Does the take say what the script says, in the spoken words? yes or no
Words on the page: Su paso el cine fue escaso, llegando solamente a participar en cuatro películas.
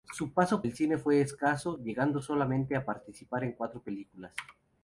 yes